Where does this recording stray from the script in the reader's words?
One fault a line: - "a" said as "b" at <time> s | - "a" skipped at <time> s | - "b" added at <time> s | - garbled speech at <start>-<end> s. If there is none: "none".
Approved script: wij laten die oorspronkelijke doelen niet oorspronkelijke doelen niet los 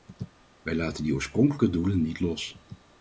- "oorspronkelijke doelen niet" skipped at 2.2 s